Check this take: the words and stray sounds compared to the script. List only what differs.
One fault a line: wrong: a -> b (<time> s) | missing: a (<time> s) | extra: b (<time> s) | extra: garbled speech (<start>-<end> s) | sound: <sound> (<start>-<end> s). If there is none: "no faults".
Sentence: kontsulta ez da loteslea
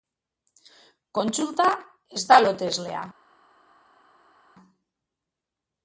no faults